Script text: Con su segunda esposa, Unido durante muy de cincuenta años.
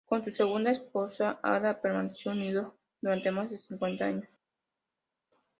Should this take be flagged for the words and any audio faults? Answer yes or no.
yes